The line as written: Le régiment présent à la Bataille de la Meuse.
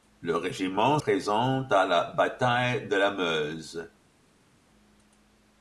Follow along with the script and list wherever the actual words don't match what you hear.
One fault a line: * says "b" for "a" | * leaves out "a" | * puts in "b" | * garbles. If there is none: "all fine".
all fine